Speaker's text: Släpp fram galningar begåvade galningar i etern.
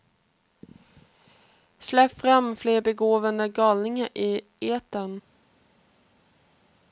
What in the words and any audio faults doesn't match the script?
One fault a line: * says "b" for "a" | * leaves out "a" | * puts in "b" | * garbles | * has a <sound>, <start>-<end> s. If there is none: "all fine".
* says "fler" for "galningar"